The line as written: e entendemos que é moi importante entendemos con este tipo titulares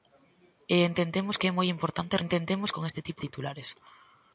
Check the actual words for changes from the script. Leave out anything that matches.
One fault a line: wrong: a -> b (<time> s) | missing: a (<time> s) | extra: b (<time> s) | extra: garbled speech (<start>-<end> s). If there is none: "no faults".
no faults